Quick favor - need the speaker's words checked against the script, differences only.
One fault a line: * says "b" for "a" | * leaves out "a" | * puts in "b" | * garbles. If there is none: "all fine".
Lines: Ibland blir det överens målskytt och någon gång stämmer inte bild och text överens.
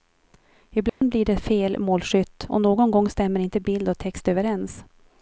* says "fel" for "överens"